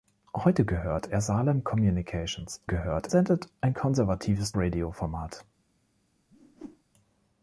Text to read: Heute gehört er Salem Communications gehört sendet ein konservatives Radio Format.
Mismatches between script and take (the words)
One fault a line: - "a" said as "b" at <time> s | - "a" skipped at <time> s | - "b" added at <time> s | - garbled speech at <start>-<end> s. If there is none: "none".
none